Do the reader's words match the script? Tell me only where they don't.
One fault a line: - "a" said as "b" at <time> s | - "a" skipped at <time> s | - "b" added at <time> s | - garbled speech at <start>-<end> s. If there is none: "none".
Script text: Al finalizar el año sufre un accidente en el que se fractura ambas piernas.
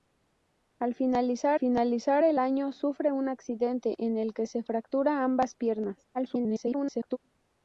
- "finalizar" added at 1.6 s
- garbled speech at 6.1-7.2 s